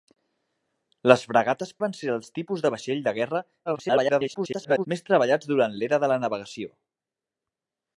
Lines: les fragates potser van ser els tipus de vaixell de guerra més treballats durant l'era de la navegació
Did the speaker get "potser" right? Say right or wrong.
wrong